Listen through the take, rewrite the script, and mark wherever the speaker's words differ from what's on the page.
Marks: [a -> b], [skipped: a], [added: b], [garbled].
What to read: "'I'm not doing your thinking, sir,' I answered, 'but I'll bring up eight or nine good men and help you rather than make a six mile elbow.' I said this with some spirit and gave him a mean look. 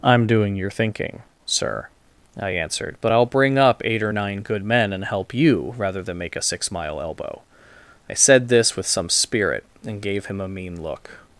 "'I'm [skipped: not] doing your thinking, sir,' I answered, 'but I'll bring up eight or nine good men and help you rather than make a six mile elbow.' I said this with some spirit and gave him a mean look.